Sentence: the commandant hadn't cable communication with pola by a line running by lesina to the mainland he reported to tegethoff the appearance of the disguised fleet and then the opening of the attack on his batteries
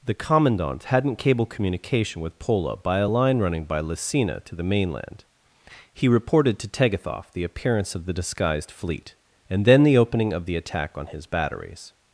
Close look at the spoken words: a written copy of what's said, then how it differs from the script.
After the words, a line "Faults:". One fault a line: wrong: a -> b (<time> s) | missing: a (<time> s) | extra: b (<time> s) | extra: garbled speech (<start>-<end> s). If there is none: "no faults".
the commandant hadn't cable communication with pola by a line running by lesina to the mainland he reported to tegethoff the appearance of the disguised fleet and then the opening of the attack on his batteries
Faults:
no faults